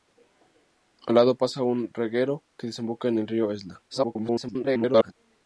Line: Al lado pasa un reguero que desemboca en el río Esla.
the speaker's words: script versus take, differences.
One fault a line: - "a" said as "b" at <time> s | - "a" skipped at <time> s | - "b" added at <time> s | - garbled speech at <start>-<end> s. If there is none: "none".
- garbled speech at 3.9-5.1 s